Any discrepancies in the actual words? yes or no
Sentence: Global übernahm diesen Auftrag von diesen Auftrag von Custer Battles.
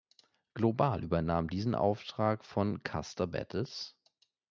yes